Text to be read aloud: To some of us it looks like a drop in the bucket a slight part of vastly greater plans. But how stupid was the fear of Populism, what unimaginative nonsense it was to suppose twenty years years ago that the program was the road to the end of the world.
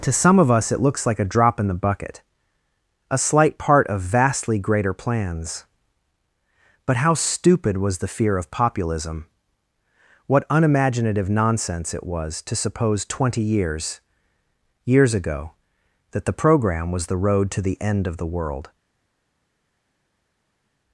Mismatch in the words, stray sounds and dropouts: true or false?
false